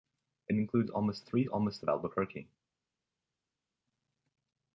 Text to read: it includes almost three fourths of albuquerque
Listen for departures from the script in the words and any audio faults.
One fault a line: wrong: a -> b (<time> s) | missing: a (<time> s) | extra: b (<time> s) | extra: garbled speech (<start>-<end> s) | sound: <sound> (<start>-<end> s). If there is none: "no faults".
wrong: fourths -> almost (1.5 s)